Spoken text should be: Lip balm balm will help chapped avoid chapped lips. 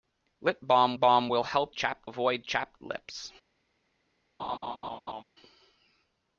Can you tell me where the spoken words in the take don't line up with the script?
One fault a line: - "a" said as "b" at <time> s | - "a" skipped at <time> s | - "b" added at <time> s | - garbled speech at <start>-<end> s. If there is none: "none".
none